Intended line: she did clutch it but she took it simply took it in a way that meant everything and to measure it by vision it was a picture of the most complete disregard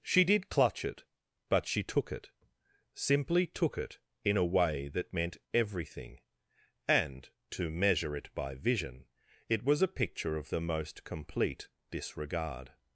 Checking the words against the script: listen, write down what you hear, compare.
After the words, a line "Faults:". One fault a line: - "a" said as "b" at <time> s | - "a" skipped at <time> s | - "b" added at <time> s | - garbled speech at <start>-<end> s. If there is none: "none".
she did clutch it but she took it simply took it in a way that meant everything and to measure it by vision it was a picture of the most complete disregard
Faults:
none